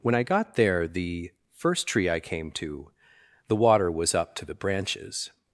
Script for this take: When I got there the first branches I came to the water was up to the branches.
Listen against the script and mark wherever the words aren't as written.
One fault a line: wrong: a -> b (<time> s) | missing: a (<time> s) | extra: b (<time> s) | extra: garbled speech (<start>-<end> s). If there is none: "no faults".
wrong: branches -> tree (1.9 s)